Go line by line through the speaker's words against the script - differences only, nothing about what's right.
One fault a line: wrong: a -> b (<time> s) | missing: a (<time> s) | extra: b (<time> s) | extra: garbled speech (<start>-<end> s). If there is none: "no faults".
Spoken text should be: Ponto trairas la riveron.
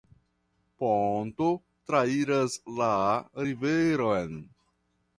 no faults